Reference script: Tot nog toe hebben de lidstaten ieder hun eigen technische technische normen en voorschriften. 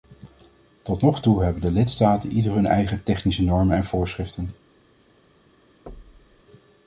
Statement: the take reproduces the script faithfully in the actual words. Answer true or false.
false